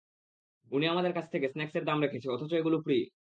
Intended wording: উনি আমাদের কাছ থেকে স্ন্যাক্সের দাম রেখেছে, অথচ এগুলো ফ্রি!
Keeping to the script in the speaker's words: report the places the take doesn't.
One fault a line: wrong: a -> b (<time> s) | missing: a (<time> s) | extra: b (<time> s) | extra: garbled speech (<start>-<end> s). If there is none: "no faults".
no faults